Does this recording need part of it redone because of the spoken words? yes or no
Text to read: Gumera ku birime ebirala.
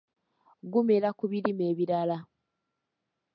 no